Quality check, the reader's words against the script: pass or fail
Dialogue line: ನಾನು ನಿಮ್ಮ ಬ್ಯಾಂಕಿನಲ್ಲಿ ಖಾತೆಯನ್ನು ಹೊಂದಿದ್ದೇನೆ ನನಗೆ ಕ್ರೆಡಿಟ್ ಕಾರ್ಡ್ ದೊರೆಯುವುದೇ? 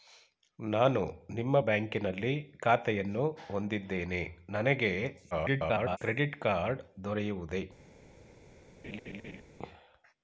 fail